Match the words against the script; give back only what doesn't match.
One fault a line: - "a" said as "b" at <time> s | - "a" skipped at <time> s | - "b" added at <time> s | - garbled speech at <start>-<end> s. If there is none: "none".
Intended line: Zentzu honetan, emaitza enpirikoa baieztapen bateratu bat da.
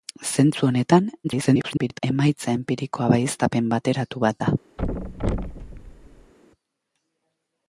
- garbled speech at 1.2-2.0 s